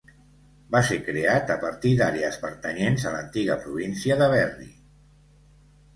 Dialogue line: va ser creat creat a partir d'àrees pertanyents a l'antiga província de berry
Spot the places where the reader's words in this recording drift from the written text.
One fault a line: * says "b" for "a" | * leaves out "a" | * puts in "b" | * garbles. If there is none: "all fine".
* leaves out "creat"